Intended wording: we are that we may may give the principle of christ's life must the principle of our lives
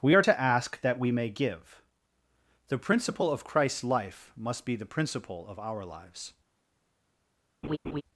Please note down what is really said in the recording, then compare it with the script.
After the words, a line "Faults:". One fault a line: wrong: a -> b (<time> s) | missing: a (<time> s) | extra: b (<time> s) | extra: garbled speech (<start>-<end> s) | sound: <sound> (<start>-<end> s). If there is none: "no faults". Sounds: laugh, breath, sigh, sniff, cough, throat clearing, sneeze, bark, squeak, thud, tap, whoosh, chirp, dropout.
we are to ask that we may give the principle of christ's life must be the principle of our lives
Faults:
extra: to ask (0.2 s)
missing: may (1.3 s)
extra: be (4.6 s)
sound: laugh (7.6-8.0 s)